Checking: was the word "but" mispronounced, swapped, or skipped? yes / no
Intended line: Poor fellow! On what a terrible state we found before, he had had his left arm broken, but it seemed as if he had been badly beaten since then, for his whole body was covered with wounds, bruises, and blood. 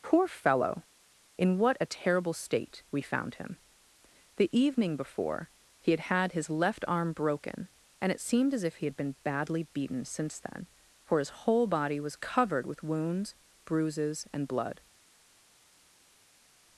yes